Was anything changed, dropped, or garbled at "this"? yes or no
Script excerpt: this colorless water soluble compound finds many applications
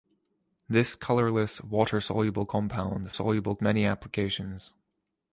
no